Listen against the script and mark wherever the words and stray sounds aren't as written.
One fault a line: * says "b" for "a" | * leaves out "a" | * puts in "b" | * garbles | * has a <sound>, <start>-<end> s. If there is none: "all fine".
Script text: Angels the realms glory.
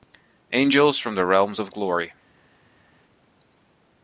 * puts in "from"
* puts in "of"